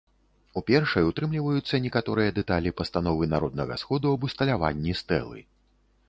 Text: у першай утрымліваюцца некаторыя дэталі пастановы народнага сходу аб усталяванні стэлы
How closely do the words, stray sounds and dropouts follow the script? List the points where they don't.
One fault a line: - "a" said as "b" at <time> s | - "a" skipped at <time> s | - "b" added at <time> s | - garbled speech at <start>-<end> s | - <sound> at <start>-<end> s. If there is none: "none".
none